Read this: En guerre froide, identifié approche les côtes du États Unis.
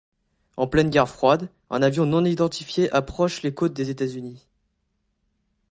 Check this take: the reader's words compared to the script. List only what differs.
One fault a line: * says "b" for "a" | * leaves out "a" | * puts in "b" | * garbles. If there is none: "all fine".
* puts in "pleine"
* puts in "un avion non"
* says "des" for "du"